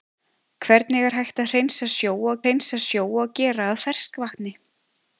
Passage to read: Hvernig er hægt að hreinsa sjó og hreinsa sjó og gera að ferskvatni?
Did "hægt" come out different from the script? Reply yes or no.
no